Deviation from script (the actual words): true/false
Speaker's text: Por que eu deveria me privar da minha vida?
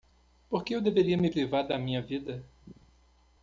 false